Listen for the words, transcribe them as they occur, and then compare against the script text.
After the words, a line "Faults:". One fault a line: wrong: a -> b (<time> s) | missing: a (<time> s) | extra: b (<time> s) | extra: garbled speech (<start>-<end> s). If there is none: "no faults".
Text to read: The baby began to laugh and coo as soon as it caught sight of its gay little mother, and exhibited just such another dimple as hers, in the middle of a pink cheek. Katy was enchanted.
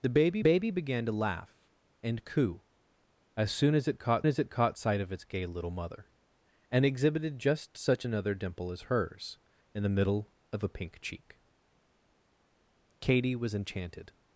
The baby baby began to laugh and coo as soon as it caught as it caught sight of its gay little mother, and exhibited just such another dimple as hers, in the middle of a pink cheek. Katy was enchanted.
Faults:
extra: baby (0.4 s)
extra: as it caught (4.2 s)